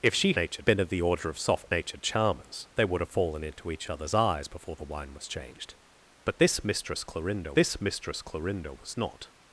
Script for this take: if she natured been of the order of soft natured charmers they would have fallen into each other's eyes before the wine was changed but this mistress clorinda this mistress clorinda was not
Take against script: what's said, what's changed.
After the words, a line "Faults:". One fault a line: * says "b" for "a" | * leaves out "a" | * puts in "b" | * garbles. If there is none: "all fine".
if she natured been of the order of soft natured charmers they would have fallen into each other's eyes before the wine was changed but this mistress clorinda this mistress clorinda was not
Faults:
all fine